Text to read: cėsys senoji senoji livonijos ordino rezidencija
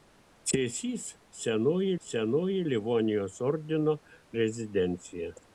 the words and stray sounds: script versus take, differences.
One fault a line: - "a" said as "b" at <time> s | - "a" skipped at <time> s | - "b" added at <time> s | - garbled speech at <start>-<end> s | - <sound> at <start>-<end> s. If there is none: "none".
none